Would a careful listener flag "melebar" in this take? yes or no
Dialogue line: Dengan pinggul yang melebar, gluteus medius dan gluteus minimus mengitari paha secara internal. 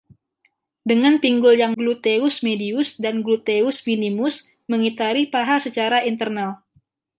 yes